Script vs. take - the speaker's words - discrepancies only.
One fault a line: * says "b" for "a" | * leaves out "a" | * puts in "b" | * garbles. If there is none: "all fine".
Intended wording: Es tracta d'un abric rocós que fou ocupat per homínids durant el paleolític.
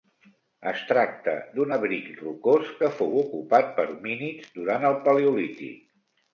all fine